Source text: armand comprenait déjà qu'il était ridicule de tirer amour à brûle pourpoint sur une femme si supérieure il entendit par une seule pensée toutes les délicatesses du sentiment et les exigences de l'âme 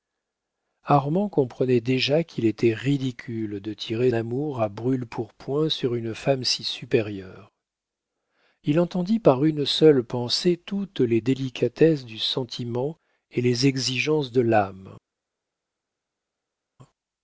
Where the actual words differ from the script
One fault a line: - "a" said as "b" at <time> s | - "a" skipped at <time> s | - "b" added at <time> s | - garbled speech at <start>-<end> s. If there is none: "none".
none